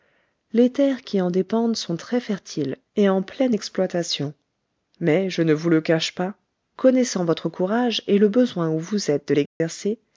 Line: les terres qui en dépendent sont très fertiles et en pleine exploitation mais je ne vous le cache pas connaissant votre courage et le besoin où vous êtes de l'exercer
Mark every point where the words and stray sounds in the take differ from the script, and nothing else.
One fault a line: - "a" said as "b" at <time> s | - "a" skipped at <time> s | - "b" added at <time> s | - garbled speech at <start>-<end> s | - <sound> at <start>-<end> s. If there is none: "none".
- dropout at 9.5-9.6 s